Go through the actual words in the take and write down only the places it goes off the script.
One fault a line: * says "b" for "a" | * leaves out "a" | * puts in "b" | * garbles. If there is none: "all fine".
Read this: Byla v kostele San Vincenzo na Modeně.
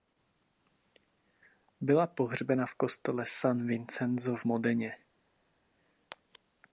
* puts in "pohřbena"
* says "v" for "na"